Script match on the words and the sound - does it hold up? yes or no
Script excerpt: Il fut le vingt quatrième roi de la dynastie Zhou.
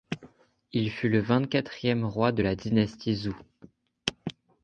yes